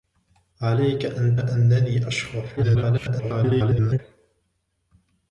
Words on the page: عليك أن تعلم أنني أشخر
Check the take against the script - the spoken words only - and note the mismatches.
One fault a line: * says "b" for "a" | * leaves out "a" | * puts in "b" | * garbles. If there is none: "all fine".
* leaves out "تعلم"
* garbles